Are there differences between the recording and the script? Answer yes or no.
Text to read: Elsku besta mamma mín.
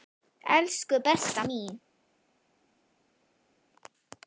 yes